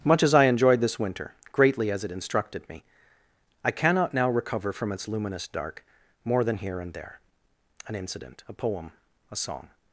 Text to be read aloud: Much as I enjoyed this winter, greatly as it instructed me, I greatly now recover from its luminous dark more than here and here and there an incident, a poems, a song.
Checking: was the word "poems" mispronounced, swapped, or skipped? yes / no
yes